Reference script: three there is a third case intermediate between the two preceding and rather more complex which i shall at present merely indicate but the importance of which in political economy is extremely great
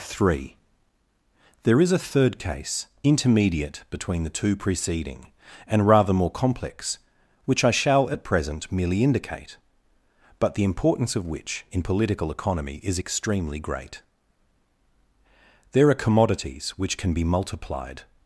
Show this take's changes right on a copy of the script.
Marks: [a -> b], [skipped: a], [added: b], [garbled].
three there is a third case intermediate between the two preceding and rather more complex which i shall at present merely indicate but the importance of which in political economy is extremely great [added: there are commodities which can be multiplied]